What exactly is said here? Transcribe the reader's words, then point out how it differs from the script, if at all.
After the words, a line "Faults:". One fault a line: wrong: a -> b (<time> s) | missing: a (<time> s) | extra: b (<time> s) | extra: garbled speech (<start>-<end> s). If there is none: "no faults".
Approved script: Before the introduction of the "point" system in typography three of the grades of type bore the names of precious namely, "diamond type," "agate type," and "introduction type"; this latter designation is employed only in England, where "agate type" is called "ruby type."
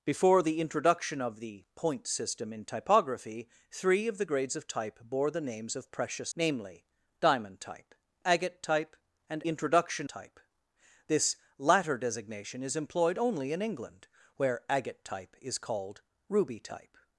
Before the introduction of the "point" system in typography three of the grades of type bore the names of precious namely, "diamond type," "agate type," and "introduction type"; this latter designation is employed only in England, where "agate type" is called "ruby type."
Faults:
no faults